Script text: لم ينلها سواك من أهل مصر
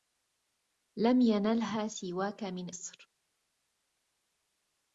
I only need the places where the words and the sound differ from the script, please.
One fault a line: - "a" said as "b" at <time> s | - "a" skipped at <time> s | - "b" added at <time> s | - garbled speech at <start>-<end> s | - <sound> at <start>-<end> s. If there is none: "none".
- "أهل" skipped at 2.8 s